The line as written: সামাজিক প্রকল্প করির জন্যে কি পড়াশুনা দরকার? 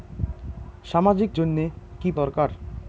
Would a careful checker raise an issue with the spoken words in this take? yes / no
yes